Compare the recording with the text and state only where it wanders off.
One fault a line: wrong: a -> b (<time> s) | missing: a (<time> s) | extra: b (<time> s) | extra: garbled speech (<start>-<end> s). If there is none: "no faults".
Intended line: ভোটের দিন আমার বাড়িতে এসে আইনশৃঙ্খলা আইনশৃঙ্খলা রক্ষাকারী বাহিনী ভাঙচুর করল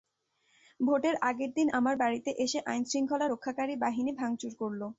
extra: আগের (1.2 s)
missing: আইনশৃঙ্খলা (3.3 s)